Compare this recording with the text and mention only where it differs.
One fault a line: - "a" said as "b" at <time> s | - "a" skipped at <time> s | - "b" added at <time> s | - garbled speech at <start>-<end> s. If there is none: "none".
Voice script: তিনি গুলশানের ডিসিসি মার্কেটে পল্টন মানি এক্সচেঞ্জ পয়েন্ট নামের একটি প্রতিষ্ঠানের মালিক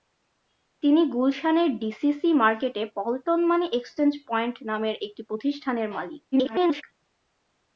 - garbled speech at 6.3-6.8 s